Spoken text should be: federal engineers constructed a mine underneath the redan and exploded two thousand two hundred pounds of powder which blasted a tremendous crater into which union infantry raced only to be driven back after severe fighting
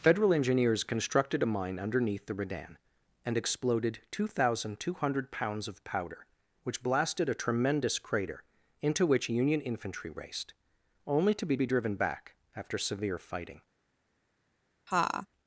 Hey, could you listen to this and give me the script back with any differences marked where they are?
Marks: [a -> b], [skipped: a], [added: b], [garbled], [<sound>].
federal engineers constructed a mine underneath the redan and exploded two thousand two hundred pounds of powder which blasted a tremendous crater into which union infantry raced only to be [added: be] driven back after severe fighting [laugh]